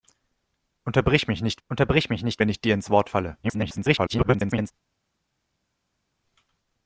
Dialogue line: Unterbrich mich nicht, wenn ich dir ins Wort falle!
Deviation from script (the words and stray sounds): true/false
true